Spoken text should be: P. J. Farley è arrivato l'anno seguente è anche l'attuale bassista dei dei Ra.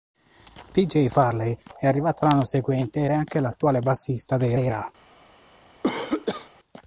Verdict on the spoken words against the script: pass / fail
pass